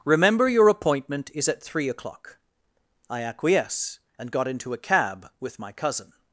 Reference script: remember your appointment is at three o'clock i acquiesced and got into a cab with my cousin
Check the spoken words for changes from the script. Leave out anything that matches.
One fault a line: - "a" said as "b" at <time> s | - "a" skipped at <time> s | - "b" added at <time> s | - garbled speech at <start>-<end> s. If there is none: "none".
- "acquiesced" said as "acquiesce" at 3.2 s